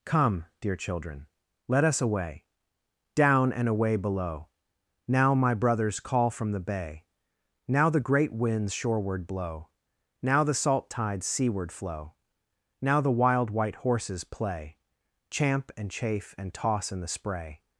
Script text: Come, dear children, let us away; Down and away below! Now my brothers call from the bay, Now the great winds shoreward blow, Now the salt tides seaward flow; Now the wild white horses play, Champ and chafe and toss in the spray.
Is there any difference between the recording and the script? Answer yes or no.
no